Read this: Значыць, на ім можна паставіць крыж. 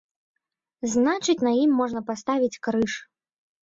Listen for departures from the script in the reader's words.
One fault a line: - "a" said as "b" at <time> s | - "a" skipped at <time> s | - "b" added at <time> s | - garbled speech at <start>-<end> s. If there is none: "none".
none